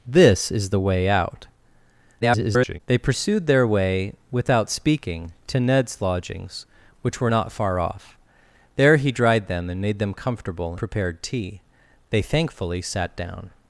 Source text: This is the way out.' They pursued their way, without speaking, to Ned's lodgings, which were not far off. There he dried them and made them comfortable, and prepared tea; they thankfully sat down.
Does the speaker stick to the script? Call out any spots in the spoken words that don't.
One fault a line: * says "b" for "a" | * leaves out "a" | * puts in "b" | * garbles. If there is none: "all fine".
* garbles
* leaves out "and"